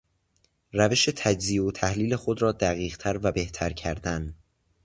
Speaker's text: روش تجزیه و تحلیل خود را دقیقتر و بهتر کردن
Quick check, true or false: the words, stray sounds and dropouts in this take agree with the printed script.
true